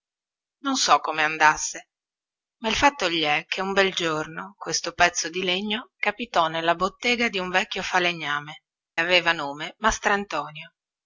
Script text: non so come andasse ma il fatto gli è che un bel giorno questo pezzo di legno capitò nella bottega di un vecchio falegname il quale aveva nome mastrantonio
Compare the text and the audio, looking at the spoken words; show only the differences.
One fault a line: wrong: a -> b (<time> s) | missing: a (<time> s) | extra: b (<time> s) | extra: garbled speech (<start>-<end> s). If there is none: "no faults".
missing: il quale (8.6 s)